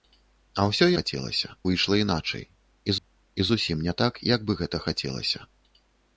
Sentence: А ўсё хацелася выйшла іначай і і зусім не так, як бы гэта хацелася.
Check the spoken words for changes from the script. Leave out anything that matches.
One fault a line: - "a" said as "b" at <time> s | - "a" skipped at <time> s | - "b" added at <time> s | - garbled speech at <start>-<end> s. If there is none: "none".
none